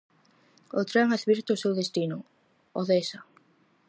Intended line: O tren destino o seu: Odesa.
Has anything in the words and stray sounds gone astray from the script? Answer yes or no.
yes